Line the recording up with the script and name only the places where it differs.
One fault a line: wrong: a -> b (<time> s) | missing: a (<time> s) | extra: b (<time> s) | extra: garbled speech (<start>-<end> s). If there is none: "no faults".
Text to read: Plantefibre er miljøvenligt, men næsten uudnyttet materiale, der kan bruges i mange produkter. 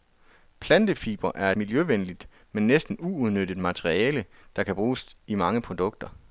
no faults